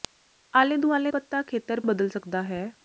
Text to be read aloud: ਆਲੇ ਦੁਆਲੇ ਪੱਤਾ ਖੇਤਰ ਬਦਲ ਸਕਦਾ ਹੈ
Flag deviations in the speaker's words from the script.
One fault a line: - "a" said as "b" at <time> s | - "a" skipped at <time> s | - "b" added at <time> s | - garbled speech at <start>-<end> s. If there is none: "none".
none